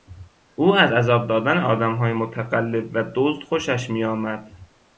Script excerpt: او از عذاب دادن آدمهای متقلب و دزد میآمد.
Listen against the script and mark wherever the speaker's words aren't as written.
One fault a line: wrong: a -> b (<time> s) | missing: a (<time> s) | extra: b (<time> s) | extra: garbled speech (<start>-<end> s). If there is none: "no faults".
extra: خوشش (3.4 s)